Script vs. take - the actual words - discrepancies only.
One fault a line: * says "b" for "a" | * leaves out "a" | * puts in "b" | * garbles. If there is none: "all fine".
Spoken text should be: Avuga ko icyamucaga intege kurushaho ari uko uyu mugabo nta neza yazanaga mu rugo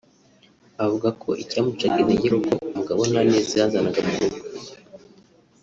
* leaves out "kurushaho"
* leaves out "uyu"